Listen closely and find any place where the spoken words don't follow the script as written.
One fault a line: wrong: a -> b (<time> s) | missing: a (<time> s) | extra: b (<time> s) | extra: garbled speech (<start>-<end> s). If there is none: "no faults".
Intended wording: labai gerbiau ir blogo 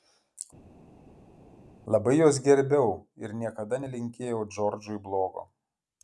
extra: juos (2.2 s)
extra: niekada nelinkėjau džordžui (3.4 s)